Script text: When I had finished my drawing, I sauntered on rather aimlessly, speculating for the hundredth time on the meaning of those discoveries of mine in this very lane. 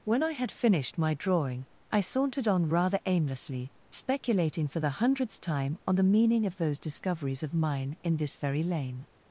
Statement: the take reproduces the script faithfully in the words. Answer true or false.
true